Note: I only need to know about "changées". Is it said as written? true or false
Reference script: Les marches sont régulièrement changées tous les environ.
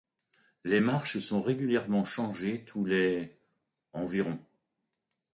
true